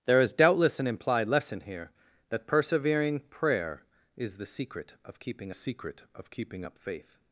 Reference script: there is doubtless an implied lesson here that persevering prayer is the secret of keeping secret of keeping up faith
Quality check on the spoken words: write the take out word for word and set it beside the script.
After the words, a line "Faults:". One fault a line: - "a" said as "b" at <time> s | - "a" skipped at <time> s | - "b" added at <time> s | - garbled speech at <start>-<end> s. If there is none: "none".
there is doubtless an implied lesson here that persevering prayer is the secret of keeping secret of keeping up faith
Faults:
none